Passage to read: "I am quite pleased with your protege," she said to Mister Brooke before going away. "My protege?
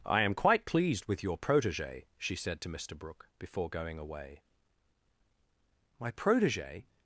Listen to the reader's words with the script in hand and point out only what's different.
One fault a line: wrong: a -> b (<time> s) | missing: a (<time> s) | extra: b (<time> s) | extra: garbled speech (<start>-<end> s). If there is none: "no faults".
no faults